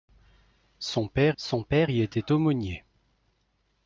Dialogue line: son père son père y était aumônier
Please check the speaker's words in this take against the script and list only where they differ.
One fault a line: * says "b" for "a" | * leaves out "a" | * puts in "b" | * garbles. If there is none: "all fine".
all fine